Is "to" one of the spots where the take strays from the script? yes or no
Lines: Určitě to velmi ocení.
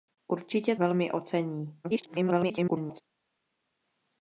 yes